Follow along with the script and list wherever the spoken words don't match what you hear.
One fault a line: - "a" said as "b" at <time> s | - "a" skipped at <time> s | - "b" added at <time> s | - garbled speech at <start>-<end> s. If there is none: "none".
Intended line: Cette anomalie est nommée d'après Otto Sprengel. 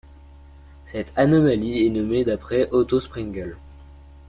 none